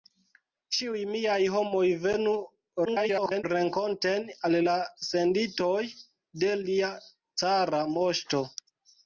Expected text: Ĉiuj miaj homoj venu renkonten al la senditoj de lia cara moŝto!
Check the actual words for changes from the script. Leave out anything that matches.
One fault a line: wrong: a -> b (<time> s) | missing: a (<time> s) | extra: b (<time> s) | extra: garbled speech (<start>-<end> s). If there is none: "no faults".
extra: garbled speech (2.9-3.4 s)